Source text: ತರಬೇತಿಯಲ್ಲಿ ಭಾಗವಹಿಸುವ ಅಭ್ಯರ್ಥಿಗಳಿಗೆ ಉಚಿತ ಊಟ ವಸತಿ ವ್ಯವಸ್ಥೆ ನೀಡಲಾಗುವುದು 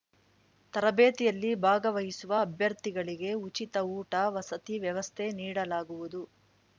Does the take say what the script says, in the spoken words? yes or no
yes